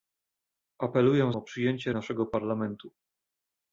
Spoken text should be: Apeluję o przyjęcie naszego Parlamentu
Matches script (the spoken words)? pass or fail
pass